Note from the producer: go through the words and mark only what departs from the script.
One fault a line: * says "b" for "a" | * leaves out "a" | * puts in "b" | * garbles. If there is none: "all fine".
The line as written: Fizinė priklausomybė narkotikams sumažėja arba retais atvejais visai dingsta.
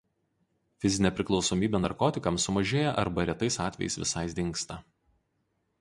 all fine